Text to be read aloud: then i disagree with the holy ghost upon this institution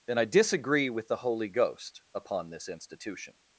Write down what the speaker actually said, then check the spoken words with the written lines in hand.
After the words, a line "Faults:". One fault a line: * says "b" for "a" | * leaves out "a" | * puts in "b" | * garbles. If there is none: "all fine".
then i disagree with the holy ghost upon this institution
Faults:
all fine